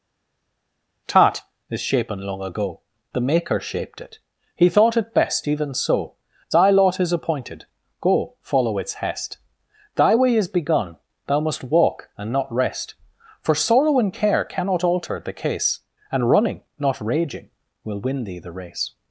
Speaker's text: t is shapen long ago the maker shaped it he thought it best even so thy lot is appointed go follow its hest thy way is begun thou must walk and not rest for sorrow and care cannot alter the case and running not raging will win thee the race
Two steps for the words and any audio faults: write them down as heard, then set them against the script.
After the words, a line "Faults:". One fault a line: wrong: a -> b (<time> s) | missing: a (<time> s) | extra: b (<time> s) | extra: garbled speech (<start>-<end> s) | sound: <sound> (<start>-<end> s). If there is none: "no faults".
tat is shapen long ago the maker shaped it he thought it best even so thy lot is appointed go follow its hest thy way is begun thou must walk and not rest for sorrow and care cannot alter the case and running not raging will win thee the race
Faults:
wrong: t -> tat (1.1 s)